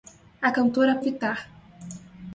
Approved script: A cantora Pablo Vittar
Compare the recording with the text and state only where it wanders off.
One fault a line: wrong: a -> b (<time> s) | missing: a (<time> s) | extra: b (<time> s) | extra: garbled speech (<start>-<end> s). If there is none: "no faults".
missing: Pablo (1.0 s)